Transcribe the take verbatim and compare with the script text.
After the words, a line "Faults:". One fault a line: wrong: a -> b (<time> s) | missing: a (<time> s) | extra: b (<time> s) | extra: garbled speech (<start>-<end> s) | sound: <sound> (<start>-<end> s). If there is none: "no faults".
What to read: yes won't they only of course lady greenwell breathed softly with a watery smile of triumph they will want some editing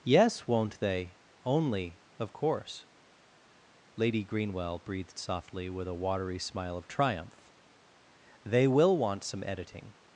yes won't they only of course lady greenwell breathed softly with a watery smile of triumph they will want some editing
Faults:
no faults